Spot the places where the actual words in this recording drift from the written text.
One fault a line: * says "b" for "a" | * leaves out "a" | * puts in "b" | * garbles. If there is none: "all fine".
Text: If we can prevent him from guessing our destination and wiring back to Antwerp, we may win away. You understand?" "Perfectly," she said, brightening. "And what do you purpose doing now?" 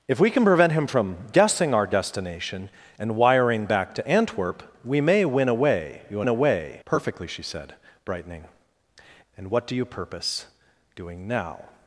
* says "away" for "understand"